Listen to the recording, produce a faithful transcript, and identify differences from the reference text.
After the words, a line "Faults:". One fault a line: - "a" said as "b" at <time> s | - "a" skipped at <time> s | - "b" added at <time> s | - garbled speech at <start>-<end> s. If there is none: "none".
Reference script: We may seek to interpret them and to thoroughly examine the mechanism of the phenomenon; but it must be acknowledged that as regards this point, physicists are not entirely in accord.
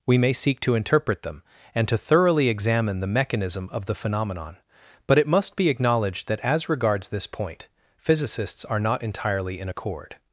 We may seek to interpret them and to thoroughly examine the mechanism of the phenomenon; but it must be acknowledged that as regards this point, physicists are not entirely in accord.
Faults:
none